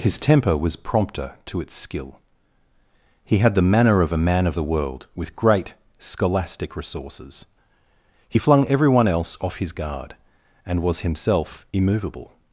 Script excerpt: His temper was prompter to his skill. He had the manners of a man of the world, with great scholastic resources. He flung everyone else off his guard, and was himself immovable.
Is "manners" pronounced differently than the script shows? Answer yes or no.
yes